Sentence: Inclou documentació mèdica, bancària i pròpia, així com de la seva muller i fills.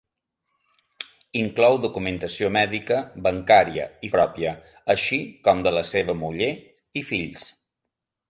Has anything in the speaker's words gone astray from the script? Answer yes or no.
no